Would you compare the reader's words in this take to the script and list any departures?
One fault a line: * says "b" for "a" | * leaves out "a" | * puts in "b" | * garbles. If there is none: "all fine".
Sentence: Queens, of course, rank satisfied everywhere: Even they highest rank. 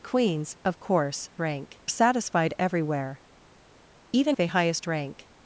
all fine